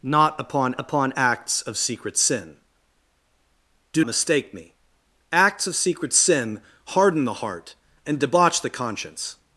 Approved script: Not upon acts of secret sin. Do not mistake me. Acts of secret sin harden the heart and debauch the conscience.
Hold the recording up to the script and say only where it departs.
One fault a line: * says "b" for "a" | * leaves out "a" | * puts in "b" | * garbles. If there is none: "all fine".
* puts in "upon"
* leaves out "not"